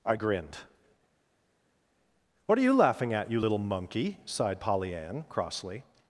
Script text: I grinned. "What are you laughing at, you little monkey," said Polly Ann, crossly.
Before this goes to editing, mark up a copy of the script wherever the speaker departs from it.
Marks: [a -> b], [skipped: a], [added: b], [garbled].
I grinned. "What are you laughing at, you little monkey," [said -> sighed] Polly Ann, crossly.